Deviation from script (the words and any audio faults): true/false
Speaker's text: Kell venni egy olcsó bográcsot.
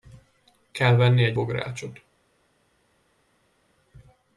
true